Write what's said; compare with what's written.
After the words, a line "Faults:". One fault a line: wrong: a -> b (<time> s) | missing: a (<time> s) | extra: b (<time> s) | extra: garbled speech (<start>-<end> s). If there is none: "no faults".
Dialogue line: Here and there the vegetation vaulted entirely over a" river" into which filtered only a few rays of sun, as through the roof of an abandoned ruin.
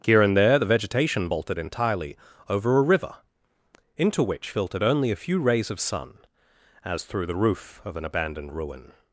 Here and there the vegetation vaulted entirely over a" river" into which filtered only a few rays of sun, as through the roof of an abandoned ruin.
Faults:
no faults